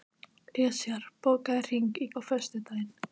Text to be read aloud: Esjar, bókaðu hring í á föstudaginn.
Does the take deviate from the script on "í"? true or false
false